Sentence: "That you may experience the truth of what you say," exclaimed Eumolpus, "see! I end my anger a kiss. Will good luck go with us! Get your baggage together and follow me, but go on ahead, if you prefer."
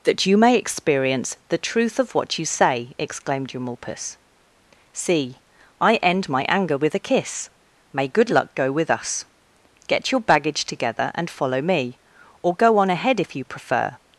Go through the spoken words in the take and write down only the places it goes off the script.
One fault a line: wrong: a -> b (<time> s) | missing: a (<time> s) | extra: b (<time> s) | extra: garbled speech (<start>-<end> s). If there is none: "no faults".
extra: with (6.8 s)
wrong: Will -> May (7.9 s)
wrong: but -> or (12.4 s)